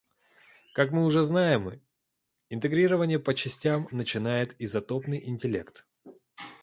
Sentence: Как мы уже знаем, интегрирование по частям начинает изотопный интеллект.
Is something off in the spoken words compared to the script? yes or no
no